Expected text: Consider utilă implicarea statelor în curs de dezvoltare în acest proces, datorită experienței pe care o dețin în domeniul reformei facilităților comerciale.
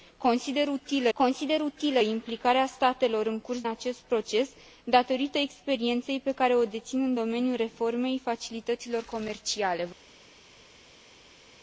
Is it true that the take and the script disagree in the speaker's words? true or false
true